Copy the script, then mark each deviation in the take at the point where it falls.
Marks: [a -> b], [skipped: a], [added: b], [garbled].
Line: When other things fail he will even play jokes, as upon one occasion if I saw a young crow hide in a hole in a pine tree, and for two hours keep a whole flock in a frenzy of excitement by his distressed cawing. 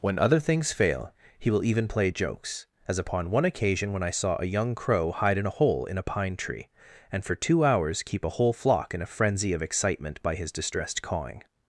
When other things fail he will even play jokes, as upon one occasion [if -> when] I saw a young crow hide in a hole in a pine tree, and for two hours keep a whole flock in a frenzy of excitement by his distressed cawing.